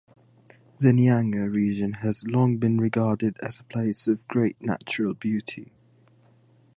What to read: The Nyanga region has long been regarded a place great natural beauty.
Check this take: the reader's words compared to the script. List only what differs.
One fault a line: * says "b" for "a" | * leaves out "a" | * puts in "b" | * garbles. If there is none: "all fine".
* puts in "as"
* puts in "of"